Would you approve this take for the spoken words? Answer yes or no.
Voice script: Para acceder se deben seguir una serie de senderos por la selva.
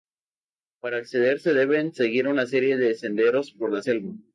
yes